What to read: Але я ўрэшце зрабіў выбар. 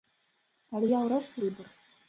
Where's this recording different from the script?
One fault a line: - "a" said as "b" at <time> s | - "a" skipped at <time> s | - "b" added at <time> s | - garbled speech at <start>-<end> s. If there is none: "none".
- "зрабіў" skipped at 1.4 s